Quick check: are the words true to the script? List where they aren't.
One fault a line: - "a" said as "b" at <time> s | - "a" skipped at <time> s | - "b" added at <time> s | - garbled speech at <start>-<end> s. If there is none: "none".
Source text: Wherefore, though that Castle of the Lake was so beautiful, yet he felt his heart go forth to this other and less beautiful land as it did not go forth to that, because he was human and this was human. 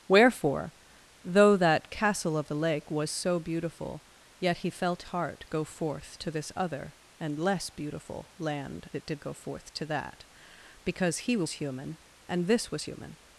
- "his" skipped at 5.0 s
- "as" skipped at 8.9 s
- "not" skipped at 9.2 s